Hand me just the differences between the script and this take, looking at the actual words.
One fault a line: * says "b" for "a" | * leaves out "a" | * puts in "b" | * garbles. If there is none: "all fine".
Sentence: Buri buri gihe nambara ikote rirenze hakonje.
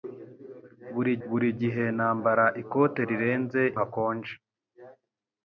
all fine